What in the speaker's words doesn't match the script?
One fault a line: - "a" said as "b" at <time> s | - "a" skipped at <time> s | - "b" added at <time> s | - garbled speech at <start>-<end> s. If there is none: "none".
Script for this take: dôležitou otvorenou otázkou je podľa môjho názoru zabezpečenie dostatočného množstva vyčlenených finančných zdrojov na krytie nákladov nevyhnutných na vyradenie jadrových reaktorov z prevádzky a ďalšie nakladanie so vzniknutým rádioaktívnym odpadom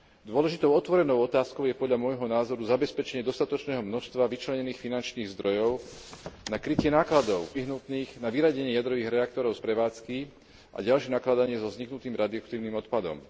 none